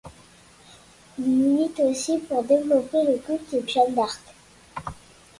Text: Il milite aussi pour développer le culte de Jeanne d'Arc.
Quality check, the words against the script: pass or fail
fail